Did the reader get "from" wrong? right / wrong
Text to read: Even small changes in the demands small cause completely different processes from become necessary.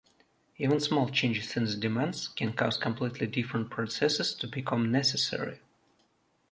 wrong